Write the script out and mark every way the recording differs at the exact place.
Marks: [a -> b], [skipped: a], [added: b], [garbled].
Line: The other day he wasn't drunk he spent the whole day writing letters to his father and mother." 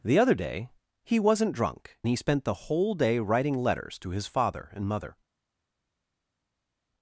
The other day he wasn't drunk he spent the whole day writing letters to his father and mother."